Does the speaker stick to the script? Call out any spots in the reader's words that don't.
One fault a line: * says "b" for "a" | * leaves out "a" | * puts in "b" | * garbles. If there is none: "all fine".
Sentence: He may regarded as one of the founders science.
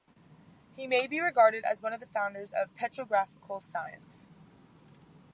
* puts in "be"
* puts in "of petrographical"